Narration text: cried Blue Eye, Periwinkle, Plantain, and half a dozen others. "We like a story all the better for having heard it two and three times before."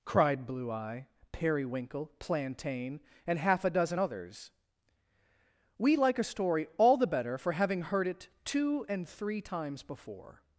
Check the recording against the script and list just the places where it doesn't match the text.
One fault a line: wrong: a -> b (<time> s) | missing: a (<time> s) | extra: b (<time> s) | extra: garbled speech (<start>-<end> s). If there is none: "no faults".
no faults